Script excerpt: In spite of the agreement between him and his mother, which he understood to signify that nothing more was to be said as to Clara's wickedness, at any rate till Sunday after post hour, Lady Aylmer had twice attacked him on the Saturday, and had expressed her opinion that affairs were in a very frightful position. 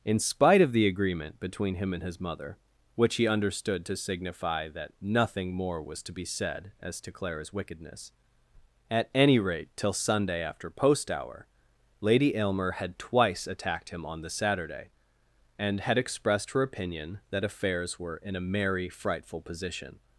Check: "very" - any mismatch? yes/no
yes